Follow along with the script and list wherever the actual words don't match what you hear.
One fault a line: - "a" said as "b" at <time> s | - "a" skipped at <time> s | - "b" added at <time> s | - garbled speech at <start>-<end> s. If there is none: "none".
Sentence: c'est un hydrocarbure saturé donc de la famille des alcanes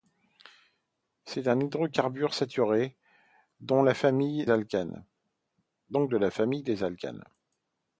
- "des" skipped at 4.5 s